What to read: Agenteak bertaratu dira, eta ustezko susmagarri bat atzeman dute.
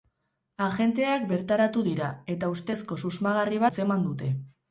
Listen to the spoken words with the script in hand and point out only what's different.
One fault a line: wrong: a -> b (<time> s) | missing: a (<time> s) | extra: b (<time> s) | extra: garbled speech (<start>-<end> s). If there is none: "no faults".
missing: bat (3.6 s)